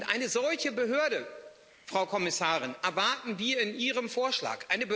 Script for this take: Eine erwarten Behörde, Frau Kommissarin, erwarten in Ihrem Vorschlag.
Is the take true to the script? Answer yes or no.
no